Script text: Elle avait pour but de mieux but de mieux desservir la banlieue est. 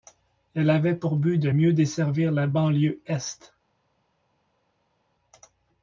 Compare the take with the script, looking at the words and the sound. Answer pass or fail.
fail